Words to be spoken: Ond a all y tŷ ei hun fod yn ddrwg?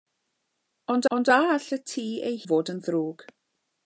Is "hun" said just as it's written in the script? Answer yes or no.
no